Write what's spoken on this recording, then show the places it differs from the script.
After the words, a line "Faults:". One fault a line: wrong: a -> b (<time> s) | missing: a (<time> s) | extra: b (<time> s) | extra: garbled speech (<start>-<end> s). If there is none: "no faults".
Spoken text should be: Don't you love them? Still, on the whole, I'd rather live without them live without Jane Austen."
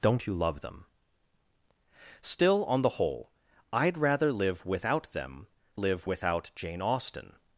Don't you love them? Still, on the whole, I'd rather live without them live without Jane Austen."
Faults:
no faults